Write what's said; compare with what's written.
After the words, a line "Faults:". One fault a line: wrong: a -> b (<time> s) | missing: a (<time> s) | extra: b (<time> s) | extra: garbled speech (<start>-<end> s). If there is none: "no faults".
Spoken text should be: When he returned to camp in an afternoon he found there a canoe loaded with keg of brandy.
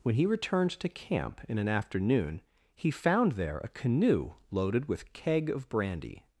When he returned to camp in an afternoon he found there a canoe loaded with keg of brandy.
Faults:
no faults